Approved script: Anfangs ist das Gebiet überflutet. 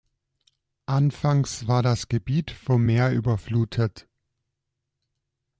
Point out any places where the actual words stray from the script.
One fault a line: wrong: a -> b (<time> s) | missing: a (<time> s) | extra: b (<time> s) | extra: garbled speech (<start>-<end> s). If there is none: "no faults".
wrong: ist -> war (1.7 s)
extra: vom Meer (2.5 s)